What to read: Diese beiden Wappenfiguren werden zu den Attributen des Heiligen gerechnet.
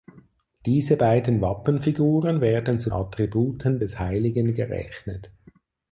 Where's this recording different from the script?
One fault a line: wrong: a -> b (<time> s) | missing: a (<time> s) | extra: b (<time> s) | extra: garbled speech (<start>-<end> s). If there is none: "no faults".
missing: den (2.9 s)